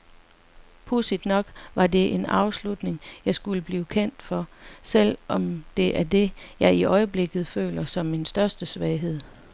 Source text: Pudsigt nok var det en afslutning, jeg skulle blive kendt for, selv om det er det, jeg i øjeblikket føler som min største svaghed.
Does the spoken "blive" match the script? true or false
true